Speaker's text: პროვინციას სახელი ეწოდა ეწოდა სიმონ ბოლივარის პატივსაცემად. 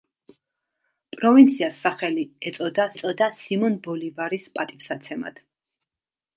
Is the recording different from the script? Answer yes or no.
no